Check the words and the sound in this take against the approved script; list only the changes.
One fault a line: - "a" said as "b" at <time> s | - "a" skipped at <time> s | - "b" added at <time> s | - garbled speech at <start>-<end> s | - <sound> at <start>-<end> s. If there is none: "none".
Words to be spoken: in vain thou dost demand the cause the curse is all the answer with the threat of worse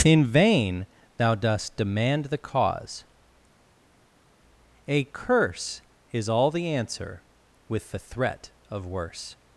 - "the" said as "a" at 4.9 s